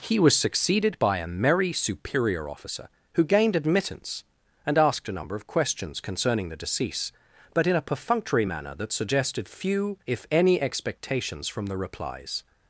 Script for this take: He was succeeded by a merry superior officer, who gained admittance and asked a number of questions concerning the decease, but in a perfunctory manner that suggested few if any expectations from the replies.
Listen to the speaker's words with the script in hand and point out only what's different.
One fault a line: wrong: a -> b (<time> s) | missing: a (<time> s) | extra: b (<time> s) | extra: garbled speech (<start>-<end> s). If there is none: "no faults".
no faults